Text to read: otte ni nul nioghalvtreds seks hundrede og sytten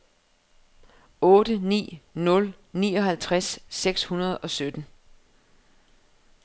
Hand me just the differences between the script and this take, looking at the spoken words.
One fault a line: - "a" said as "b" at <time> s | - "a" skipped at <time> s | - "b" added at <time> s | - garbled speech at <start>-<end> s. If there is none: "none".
none